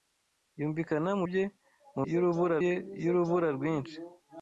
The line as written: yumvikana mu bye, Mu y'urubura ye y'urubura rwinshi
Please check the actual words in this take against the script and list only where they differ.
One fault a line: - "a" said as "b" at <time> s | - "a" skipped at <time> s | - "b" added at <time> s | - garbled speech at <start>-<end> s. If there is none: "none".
none